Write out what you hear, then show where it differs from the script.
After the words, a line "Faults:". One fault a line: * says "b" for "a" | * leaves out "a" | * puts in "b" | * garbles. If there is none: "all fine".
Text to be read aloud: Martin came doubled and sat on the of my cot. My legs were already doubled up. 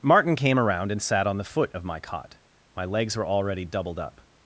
Martin came around and sat on the foot of my cot. My legs were already doubled up.
Faults:
* says "around" for "doubled"
* puts in "foot"